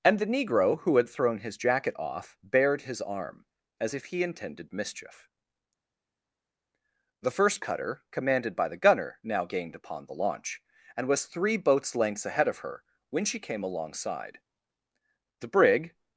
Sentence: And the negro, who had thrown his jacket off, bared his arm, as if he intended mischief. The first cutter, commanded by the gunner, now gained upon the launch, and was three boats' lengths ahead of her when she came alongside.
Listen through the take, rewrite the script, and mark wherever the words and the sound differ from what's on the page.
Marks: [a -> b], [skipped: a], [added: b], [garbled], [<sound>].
And the negro, who had thrown his jacket off, bared his arm, as if he intended mischief. The first cutter, commanded by the gunner, now gained upon the launch, and was three boats' lengths ahead of her when she came alongside. [added: The brig]